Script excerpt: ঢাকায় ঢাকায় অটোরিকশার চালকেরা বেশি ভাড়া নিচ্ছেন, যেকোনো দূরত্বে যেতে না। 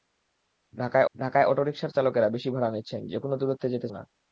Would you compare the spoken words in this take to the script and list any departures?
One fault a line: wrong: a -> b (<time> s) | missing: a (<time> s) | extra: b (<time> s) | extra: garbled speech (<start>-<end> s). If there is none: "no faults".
no faults